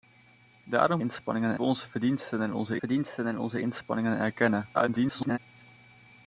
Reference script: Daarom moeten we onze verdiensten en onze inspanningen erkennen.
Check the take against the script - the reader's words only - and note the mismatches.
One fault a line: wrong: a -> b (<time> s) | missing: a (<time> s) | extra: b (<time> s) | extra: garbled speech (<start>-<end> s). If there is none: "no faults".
wrong: moeten -> inspanningen (1.0 s)
extra: verdiensten en onze (2.8 s)
extra: garbled speech (4.7-5.4 s)